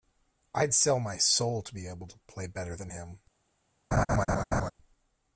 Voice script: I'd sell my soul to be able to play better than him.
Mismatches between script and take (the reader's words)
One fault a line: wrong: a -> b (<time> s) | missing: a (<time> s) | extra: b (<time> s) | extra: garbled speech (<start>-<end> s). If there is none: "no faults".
no faults